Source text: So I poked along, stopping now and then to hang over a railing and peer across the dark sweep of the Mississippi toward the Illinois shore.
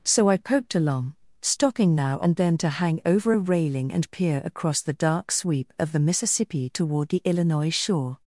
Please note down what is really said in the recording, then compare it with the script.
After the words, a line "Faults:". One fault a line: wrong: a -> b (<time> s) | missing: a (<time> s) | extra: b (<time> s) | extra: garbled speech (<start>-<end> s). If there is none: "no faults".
So I poked along, stopping now and then to hang over a railing and peer across the dark sweep of the Mississippi toward the Illinois shore.
Faults:
no faults